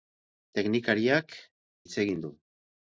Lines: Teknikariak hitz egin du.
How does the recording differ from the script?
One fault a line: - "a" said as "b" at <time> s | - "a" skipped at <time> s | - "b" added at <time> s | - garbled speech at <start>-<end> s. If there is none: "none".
none